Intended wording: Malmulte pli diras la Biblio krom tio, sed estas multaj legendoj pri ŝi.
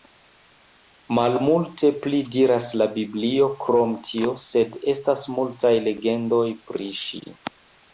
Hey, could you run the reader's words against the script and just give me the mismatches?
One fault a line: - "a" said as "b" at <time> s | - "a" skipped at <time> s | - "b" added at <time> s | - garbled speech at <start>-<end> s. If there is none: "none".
none